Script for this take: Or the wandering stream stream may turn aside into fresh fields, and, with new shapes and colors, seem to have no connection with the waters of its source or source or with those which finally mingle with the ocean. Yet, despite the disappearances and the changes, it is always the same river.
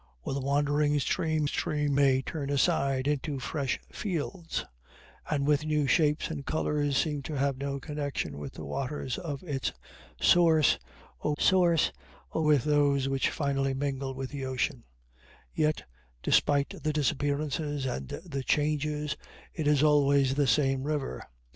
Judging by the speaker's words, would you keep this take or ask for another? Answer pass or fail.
pass